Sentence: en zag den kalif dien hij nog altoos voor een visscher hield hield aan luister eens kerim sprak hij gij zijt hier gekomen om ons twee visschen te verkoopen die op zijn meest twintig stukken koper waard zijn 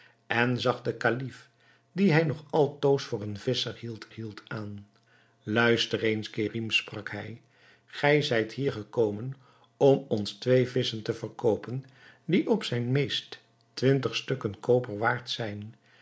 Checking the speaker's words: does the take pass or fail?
pass